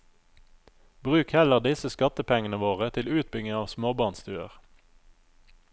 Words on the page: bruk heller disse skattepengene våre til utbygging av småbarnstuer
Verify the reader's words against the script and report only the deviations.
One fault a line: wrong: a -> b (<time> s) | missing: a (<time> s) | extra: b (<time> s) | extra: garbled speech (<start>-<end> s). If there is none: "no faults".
no faults